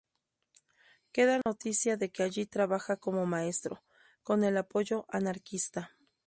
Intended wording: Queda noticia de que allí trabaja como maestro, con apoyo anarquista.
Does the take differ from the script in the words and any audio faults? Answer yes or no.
yes